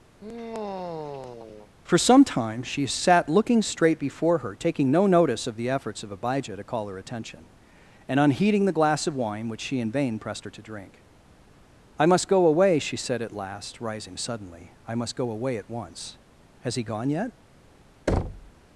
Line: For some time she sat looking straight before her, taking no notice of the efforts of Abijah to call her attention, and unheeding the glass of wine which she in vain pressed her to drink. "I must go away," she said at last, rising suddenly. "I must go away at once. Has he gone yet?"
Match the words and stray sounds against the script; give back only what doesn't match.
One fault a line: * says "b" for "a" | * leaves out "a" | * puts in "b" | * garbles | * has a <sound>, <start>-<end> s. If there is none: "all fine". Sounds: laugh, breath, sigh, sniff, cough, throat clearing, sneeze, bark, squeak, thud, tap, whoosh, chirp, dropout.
* has a sigh, 0.2-1.7 s
* has a thud, 18.1-18.5 s